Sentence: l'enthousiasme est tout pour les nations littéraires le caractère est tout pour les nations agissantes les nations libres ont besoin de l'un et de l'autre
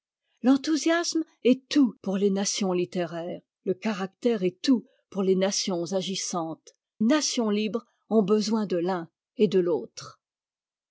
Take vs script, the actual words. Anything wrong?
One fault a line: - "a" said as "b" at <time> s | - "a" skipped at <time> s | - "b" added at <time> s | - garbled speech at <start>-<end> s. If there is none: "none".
- "les" skipped at 6.8 s